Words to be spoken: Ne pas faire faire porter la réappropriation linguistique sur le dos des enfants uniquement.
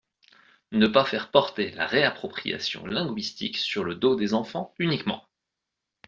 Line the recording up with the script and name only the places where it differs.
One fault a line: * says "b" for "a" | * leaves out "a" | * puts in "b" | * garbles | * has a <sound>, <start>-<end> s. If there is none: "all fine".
* leaves out "faire"